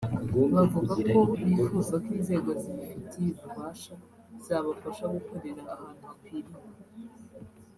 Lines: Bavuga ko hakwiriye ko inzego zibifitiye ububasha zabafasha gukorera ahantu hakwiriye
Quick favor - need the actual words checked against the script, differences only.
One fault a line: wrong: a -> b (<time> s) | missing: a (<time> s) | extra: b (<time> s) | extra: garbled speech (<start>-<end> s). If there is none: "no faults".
wrong: hakwiriye -> bifuza (1.5 s)